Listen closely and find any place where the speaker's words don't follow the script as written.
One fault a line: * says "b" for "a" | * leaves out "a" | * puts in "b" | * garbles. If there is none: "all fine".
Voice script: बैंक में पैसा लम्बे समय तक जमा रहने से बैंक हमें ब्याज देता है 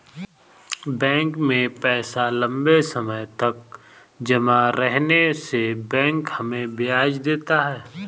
all fine